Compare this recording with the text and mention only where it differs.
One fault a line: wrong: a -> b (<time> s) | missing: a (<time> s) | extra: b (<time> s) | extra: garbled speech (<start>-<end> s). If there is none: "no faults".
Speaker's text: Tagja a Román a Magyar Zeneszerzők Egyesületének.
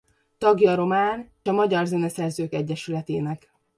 no faults